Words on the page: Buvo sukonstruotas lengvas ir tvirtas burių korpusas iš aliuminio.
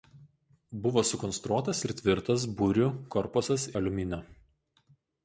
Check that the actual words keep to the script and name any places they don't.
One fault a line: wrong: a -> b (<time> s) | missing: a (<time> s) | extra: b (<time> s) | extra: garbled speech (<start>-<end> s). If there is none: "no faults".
missing: lengvas (1.8 s)
missing: iš (3.7 s)